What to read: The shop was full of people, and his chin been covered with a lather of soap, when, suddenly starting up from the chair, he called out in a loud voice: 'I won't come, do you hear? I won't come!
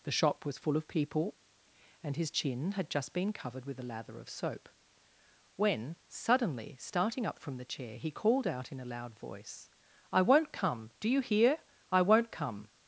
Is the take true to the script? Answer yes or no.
no